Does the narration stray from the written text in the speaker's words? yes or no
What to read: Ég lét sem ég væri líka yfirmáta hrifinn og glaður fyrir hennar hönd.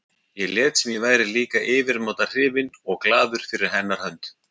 no